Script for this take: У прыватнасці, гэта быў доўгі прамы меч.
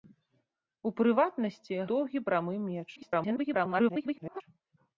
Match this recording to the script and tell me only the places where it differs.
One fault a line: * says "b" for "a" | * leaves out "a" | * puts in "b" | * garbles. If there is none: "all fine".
* leaves out "гэта быў"
* garbles